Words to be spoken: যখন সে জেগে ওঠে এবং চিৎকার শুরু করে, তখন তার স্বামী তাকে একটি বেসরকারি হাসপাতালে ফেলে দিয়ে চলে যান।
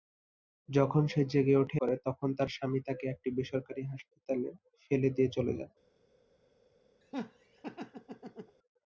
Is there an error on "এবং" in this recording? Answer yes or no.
yes